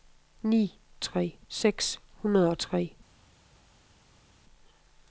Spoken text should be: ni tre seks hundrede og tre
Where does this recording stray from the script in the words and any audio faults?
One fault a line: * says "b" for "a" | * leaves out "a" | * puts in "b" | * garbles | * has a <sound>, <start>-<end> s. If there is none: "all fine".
all fine